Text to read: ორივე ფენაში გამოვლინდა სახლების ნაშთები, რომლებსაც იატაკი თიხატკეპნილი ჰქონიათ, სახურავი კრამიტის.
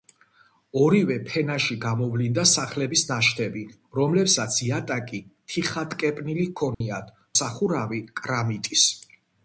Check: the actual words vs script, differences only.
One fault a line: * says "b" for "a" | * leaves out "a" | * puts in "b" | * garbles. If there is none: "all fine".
all fine